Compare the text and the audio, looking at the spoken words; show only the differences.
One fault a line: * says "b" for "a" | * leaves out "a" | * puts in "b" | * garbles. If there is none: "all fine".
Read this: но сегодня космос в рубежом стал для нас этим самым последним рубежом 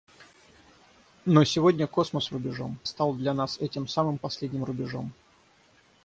all fine